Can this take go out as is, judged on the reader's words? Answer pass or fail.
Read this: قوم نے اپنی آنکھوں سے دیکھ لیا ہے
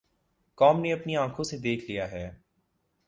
pass